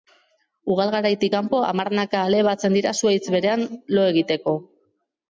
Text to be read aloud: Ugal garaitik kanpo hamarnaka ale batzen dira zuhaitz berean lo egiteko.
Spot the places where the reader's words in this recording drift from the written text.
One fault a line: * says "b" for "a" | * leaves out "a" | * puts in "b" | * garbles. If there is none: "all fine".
all fine